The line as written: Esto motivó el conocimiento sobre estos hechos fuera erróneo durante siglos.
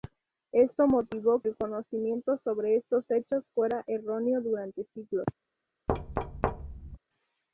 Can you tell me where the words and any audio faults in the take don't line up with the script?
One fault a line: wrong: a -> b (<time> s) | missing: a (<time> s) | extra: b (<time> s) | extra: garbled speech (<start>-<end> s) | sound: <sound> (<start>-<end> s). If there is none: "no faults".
sound: thud (5.9-7.0 s)